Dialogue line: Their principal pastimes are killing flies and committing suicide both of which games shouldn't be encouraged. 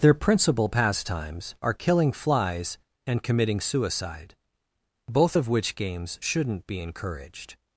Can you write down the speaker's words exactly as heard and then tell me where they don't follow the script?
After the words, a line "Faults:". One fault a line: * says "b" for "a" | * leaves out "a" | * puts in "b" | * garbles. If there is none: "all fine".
Their principal pastimes are killing flies and committing suicide both of which games shouldn't be encouraged.
Faults:
all fine